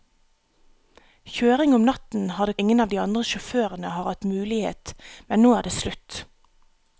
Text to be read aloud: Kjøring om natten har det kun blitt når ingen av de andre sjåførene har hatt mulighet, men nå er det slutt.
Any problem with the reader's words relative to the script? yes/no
yes